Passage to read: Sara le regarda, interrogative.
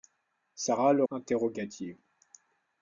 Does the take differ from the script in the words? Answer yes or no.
yes